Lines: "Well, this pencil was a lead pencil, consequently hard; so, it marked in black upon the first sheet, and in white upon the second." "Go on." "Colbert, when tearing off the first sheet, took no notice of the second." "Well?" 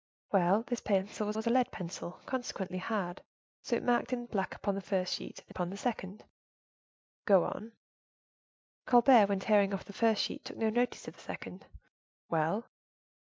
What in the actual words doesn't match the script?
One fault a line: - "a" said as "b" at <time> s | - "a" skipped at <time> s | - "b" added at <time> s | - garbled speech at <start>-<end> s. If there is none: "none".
- "was" added at 1.4 s
- "in white" skipped at 5.5 s